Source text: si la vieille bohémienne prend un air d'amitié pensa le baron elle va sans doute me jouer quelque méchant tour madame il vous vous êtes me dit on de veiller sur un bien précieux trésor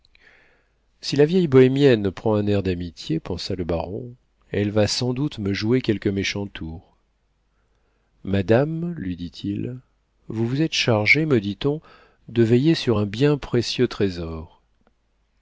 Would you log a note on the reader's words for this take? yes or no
yes